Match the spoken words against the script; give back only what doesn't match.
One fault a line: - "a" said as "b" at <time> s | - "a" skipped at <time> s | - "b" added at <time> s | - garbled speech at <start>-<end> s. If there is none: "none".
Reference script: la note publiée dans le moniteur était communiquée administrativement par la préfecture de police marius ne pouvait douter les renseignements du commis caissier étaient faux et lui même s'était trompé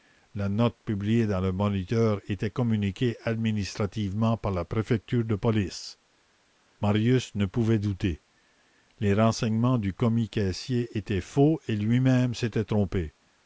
none